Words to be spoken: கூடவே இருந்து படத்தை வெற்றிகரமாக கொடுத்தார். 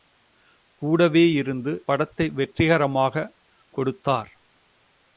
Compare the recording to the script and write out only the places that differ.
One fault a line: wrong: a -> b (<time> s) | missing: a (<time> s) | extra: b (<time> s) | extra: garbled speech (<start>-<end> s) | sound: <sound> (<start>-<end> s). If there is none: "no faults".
no faults